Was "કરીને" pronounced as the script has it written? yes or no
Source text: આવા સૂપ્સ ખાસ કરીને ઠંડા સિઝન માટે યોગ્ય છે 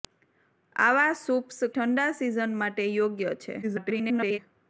no